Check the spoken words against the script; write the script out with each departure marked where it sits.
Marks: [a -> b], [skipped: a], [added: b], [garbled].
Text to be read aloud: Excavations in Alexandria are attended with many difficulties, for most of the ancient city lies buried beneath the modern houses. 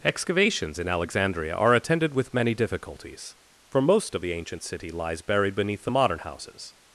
Excavations in Alexandria are attended with many difficulties, for most of the ancient city lies buried beneath the modern houses.